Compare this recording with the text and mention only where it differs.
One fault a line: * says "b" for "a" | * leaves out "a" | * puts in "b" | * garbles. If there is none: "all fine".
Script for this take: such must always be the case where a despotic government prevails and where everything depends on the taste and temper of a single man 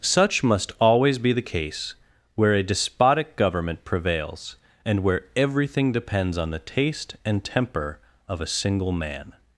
all fine